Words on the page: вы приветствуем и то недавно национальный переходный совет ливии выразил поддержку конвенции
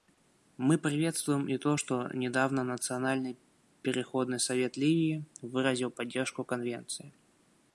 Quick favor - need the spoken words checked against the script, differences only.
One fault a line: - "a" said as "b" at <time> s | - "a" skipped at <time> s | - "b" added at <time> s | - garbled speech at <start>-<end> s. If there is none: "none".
- "вы" said as "мы" at 0.6 s
- "что" added at 1.7 s